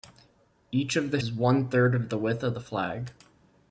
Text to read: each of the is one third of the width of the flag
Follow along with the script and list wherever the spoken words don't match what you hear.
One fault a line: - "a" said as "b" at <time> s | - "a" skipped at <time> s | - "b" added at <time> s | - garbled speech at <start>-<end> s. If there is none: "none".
none